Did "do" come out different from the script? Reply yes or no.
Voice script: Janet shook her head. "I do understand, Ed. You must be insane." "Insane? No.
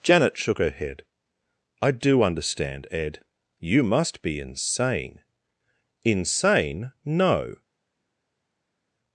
no